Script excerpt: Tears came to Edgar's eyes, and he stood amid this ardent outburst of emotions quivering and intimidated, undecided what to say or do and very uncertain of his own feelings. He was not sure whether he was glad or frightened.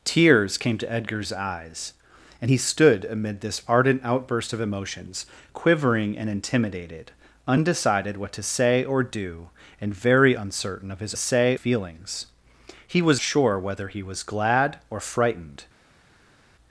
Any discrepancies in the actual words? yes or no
yes